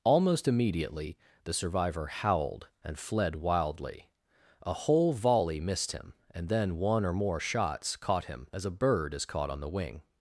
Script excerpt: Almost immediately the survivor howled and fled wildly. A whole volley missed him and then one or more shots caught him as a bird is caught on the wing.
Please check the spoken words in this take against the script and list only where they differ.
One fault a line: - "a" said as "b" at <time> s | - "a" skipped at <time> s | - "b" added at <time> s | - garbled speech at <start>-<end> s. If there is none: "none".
none